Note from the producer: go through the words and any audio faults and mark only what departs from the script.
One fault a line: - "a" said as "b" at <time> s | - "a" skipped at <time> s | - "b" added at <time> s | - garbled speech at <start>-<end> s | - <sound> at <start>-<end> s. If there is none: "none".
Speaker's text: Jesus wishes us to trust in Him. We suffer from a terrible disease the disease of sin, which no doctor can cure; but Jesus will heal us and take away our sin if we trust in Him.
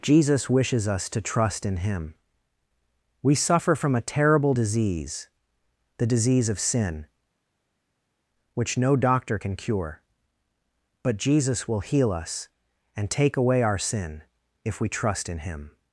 none